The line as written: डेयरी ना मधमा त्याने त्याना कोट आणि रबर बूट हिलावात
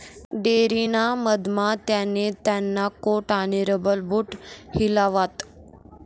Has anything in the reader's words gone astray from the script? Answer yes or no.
no